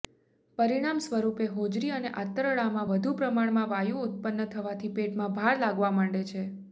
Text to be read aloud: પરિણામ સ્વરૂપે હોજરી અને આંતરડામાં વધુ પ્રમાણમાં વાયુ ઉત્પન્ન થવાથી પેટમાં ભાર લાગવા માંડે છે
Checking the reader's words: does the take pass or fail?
pass